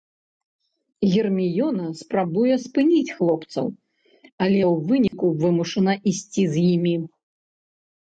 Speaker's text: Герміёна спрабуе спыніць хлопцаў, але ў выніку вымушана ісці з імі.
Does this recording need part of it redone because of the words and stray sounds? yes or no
yes